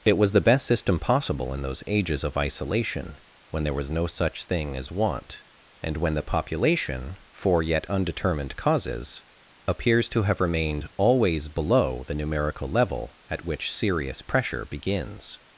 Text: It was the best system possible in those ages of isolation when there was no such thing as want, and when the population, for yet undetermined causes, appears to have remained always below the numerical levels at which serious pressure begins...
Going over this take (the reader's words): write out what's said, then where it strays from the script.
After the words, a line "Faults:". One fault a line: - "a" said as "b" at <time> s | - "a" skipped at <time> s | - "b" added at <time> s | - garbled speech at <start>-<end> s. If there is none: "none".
It was the best system possible in those ages of isolation when there was no such thing as want, and when the population, for yet undetermined causes, appears to have remained always below the numerical level at which serious pressure begins...
Faults:
- "levels" said as "level" at 12.7 s